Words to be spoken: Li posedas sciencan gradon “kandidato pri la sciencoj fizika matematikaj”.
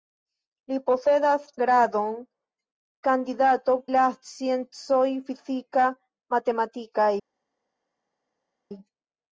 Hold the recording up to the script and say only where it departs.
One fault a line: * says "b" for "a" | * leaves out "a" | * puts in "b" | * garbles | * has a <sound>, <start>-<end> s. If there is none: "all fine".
* leaves out "sciencan"
* leaves out "pri"